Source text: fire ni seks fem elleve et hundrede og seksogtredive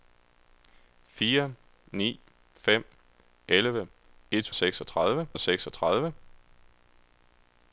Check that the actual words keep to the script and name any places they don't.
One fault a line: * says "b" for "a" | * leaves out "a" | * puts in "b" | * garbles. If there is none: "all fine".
* leaves out "seks"
* says "seksogtredive" for "hundrede"